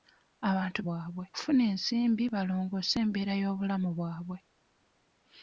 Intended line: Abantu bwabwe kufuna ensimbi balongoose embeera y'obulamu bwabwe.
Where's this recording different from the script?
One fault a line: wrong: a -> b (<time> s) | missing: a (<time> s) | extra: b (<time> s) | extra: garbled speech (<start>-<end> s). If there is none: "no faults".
no faults